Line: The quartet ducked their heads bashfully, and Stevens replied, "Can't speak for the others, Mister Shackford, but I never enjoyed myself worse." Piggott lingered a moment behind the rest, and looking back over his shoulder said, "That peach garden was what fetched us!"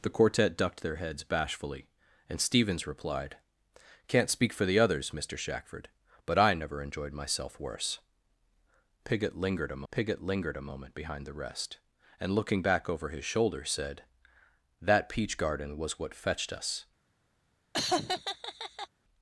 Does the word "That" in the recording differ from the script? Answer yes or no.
no